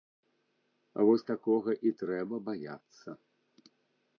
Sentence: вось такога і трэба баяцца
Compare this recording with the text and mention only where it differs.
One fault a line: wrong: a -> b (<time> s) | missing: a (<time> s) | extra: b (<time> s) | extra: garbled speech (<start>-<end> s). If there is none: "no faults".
no faults